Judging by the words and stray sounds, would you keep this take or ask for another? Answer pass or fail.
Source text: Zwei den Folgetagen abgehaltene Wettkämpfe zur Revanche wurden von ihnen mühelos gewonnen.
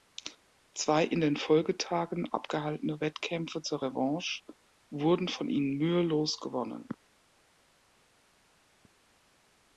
fail